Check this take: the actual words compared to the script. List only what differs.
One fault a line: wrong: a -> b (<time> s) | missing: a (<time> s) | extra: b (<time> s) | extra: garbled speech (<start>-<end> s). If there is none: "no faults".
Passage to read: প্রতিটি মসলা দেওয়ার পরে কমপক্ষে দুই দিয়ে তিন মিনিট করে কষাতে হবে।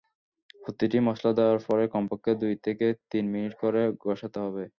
wrong: দিয়ে -> থেকে (2.6 s)